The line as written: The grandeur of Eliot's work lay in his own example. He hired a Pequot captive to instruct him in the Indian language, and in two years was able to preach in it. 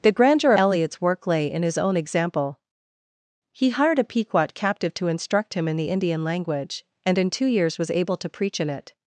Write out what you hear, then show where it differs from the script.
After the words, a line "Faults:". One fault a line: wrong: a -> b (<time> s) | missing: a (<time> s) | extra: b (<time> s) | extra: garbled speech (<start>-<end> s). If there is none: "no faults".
The grandeur Eliot's work lay in his own example. He hired a Pequot captive to instruct him in the Indian language, and in two years was able to preach in it.
Faults:
missing: of (0.5 s)